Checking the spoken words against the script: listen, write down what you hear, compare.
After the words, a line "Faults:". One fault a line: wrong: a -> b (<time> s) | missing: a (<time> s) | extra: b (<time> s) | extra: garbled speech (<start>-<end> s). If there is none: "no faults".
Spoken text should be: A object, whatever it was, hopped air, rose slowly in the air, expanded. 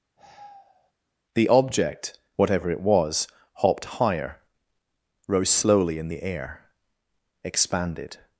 The object, whatever it was, hopped higher, rose slowly in the air, expanded.
Faults:
wrong: A -> The (1.3 s)
wrong: air -> higher (3.8 s)